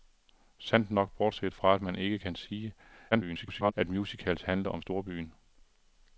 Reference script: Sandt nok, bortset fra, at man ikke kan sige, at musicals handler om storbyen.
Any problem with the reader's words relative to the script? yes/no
yes